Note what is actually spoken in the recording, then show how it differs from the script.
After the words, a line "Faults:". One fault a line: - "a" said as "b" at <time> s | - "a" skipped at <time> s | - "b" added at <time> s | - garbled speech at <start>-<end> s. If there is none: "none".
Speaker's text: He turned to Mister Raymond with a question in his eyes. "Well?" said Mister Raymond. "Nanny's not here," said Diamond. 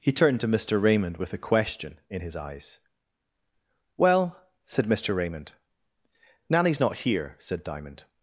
He turned to Mister Raymond with a question in his eyes. "Well?" said Mister Raymond. "Nanny's not here," said Diamond.
Faults:
none